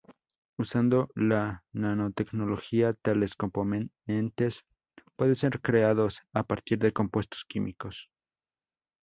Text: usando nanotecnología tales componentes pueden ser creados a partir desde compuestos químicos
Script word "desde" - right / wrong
wrong